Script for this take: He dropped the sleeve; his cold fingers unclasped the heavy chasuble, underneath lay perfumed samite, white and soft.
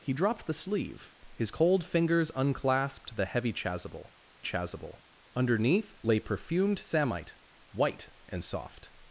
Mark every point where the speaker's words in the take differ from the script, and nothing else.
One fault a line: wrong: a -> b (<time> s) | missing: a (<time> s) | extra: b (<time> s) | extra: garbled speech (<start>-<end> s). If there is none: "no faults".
extra: chasuble (4.4 s)